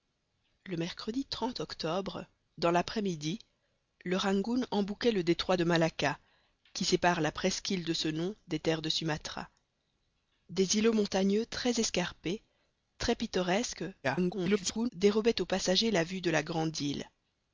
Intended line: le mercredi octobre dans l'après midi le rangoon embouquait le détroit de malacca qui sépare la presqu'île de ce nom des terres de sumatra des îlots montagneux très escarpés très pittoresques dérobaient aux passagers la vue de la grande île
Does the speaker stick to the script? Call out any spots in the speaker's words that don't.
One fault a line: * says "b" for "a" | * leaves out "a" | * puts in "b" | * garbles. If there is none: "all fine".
* garbles